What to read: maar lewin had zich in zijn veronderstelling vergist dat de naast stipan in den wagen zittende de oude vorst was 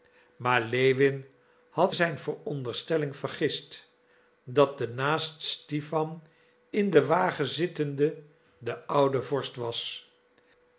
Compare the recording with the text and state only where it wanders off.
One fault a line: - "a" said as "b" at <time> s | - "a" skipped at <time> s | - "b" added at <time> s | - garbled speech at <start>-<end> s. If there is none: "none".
- "zich in" skipped at 1.9 s